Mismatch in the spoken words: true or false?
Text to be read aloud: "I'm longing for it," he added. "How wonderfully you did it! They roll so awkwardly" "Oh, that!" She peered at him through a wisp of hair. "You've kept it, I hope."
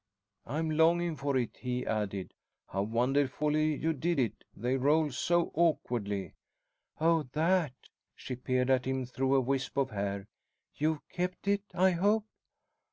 false